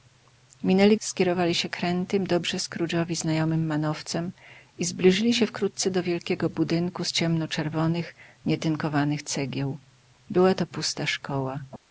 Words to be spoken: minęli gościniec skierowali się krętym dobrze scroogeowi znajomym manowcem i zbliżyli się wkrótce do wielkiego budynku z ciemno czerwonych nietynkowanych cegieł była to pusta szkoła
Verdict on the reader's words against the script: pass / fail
fail